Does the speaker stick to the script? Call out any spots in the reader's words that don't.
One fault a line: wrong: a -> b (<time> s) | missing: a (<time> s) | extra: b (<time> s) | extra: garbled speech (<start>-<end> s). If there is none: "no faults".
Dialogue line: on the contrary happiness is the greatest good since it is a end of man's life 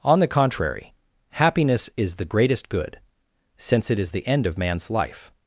wrong: a -> the (4.1 s)